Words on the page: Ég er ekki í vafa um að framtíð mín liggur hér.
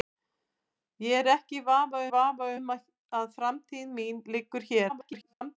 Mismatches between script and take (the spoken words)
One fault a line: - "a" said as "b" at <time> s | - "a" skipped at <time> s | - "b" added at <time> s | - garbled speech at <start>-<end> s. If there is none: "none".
- "vafa" added at 2.1 s
- garbled speech at 4.9-5.6 s